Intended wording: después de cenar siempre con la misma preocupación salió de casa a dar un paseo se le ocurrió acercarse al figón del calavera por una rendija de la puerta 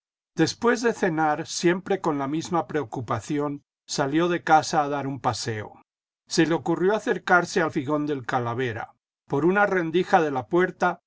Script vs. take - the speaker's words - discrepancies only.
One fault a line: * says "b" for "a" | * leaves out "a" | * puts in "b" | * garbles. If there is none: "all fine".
all fine